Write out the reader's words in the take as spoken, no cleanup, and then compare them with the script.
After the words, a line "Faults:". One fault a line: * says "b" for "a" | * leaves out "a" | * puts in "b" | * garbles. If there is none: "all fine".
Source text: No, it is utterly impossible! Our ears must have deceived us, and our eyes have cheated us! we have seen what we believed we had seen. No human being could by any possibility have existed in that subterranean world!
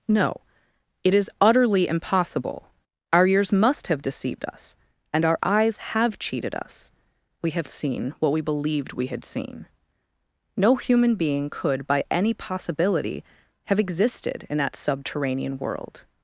No, it is utterly impossible! Our ears must have deceived us, and our eyes have cheated us! we have seen what we believed we had seen. No human being could by any possibility have existed in that subterranean world!
Faults:
all fine